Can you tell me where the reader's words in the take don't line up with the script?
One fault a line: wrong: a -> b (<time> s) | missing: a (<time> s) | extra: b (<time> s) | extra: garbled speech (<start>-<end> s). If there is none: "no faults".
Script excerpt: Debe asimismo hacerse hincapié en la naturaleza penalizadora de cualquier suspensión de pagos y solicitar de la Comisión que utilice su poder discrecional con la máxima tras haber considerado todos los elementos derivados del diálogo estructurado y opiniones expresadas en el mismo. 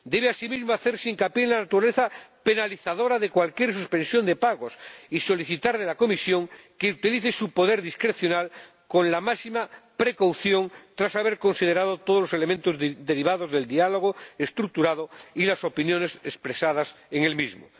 extra: precaución (9.9 s)
extra: las (15.4 s)